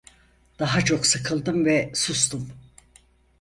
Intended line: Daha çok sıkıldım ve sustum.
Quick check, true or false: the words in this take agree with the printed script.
true